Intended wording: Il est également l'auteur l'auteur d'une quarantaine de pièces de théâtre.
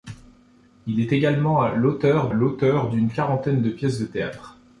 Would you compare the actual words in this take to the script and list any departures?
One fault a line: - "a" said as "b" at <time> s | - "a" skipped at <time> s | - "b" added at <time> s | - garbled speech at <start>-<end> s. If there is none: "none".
none